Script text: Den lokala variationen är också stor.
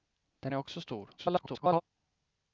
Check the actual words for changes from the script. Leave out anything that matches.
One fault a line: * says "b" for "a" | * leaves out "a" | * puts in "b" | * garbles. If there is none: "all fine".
* leaves out "lokala variationen"
* garbles